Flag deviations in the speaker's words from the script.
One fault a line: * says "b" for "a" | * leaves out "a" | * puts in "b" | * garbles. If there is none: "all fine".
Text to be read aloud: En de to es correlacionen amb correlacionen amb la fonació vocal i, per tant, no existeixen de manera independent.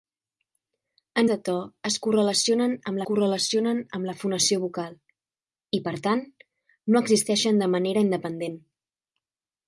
all fine